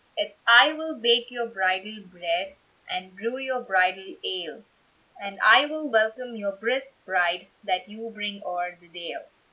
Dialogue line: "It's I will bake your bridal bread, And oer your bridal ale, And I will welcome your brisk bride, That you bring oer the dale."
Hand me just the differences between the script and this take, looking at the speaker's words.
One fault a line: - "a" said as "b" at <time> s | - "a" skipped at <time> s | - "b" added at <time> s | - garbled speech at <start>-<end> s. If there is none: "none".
- "oer" said as "brew" at 3.1 s